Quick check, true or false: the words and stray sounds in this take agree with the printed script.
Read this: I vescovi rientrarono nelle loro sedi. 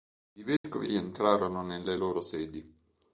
false